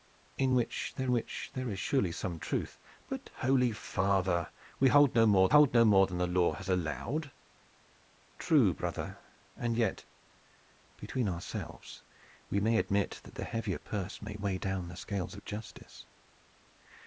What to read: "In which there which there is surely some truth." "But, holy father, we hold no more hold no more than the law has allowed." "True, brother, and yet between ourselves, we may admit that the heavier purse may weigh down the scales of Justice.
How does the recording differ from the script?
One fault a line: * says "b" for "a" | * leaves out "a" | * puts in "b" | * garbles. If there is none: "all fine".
all fine